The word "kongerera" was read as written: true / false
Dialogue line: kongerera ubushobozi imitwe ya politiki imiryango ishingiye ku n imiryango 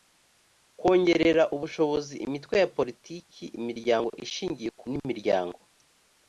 true